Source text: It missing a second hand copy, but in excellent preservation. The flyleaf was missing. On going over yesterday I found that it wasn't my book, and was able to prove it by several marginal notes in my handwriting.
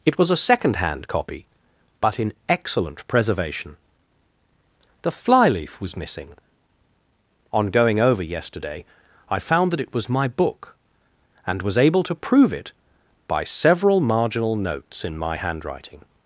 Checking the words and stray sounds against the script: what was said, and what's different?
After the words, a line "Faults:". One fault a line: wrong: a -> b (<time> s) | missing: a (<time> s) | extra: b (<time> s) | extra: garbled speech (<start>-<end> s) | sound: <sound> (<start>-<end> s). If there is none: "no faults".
It was a second hand copy, but in excellent preservation. The flyleaf was missing. On going over yesterday I found that it was my book, and was able to prove it by several marginal notes in my handwriting.
Faults:
wrong: missing -> was (0.2 s)
wrong: wasn't -> was (9.9 s)